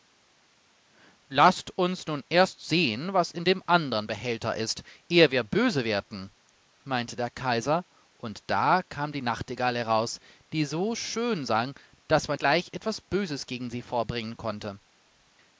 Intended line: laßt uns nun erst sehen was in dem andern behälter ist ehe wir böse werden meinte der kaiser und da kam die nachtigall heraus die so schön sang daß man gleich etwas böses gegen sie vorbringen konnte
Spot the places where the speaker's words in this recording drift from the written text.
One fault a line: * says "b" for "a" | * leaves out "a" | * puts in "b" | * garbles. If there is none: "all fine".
all fine